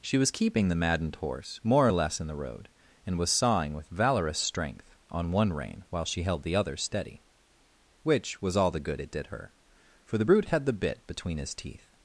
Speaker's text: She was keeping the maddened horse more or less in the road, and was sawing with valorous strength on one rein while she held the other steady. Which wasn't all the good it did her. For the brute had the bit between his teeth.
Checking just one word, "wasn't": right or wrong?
wrong